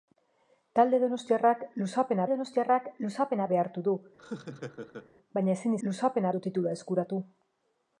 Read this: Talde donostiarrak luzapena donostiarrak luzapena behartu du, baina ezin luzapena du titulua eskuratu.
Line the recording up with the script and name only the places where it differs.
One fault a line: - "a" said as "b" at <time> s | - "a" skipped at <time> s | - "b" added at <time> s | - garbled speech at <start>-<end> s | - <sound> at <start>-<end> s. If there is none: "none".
- laugh at 4.2-5.1 s